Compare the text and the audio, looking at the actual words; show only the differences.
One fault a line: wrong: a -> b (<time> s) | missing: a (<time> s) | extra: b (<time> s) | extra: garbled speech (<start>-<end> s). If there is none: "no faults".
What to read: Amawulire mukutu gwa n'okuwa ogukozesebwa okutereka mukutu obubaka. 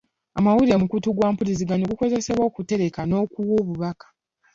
wrong: n'okuwa -> mpuliziganya (1.3 s)
wrong: mukutu -> n'okuwa (3.0 s)